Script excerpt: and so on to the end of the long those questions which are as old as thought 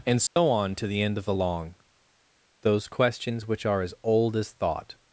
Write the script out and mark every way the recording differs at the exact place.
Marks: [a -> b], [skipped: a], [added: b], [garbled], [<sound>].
and so [dropout] on to the end of the long those questions which are as old as thought